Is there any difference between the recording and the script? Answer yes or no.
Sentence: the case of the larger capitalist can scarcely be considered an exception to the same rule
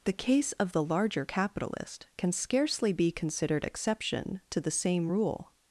yes